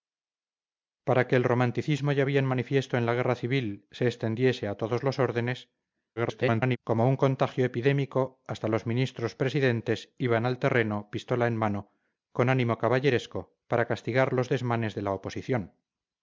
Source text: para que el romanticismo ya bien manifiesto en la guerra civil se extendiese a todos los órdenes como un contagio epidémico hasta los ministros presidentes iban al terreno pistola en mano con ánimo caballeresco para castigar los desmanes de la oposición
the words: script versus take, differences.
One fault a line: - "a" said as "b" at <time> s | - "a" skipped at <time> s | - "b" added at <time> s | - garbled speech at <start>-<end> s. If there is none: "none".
- garbled speech at 6.2-6.8 s